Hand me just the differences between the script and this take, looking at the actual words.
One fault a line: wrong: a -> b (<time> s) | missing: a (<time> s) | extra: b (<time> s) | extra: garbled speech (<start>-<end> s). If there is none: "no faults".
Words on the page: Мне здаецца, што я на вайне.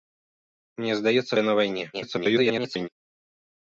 missing: што (1.4 s)
extra: garbled speech (1.9-2.9 s)